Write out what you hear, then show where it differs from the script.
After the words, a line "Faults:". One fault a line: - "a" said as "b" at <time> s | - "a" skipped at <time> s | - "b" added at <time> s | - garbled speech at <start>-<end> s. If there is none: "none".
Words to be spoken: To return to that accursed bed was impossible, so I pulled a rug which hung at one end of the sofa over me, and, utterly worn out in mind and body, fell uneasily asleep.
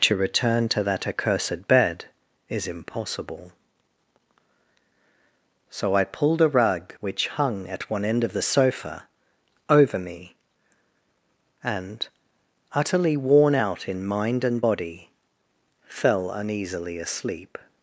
To return to that accursed bed is impossible, so I pulled a rug which hung at one end of the sofa over me, and, utterly worn out in mind and body, fell uneasily asleep.
Faults:
- "was" said as "is" at 2.5 s